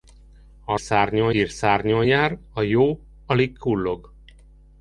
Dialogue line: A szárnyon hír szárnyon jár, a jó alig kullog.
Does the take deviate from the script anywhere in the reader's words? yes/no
no